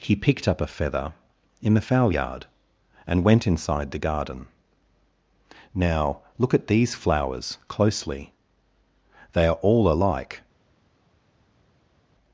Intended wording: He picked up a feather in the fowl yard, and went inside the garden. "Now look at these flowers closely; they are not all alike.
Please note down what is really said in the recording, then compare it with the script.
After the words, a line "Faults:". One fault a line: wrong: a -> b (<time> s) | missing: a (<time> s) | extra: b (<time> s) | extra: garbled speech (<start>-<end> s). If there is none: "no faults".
He picked up a feather in the fowl yard, and went inside the garden. "Now look at these flowers closely; they are all alike.
Faults:
missing: not (9.6 s)